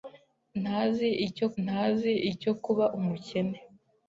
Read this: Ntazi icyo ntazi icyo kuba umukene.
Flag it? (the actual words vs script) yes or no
no